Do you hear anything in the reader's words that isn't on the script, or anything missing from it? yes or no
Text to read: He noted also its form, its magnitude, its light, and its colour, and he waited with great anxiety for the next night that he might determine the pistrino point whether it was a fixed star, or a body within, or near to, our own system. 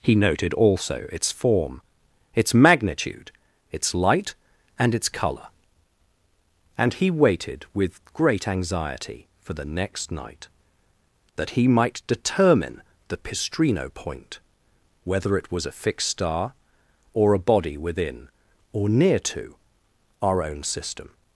no